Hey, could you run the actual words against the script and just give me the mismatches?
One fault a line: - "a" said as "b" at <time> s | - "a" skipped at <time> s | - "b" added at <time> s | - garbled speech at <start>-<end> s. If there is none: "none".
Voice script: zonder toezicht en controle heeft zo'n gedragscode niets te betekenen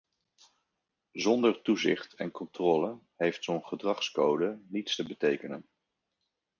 none